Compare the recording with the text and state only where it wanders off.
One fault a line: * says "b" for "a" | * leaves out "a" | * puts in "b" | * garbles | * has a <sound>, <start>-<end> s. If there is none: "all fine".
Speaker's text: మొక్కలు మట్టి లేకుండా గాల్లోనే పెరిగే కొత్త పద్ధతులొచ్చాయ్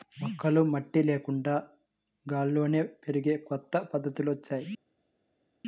all fine